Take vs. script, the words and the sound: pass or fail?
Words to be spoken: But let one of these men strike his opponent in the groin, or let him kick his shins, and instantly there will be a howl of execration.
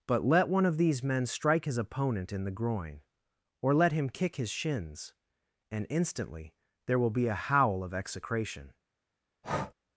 fail